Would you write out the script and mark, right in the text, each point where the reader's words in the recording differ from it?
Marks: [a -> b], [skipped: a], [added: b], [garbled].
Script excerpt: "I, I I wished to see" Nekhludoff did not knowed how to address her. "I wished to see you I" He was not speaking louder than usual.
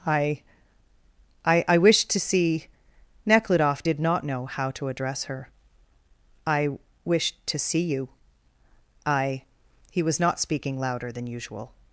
"I, I I wished to see" Nekhludoff did not [knowed -> know] how to address her. "I wished to see you I" He was not speaking louder than usual.